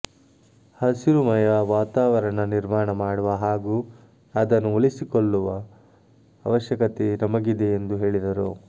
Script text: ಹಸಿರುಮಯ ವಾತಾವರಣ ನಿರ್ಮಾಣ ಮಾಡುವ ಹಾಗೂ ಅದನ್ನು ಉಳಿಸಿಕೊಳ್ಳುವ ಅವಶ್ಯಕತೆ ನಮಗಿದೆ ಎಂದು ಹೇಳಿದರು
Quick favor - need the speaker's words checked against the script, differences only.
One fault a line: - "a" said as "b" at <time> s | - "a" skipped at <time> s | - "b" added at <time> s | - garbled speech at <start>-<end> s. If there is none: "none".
none